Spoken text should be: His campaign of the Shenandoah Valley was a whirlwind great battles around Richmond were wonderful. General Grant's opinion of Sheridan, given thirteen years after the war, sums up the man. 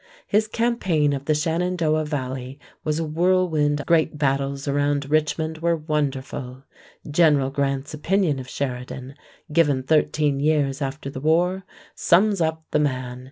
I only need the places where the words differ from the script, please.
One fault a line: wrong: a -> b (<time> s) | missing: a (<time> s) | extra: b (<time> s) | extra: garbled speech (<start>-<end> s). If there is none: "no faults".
no faults